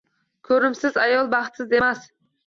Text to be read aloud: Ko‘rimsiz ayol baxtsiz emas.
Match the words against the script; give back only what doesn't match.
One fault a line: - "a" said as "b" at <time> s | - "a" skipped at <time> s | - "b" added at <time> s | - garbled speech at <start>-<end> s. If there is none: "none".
none